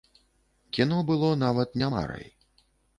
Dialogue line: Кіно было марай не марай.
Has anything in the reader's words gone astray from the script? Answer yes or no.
yes